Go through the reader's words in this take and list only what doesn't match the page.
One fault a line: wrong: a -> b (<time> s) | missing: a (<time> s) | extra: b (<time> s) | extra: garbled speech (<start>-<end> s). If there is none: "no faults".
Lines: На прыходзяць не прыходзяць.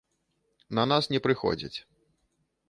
wrong: прыходзяць -> нас (0.9 s)